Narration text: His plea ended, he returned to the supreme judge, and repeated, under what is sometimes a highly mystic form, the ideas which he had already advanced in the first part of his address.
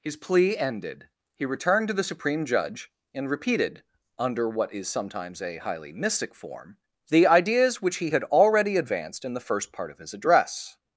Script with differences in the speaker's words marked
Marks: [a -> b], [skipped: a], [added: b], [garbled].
His plea ended, he returned to the supreme judge, and repeated, under what is sometimes a highly mystic form, the ideas which he had already advanced in the first part of his address.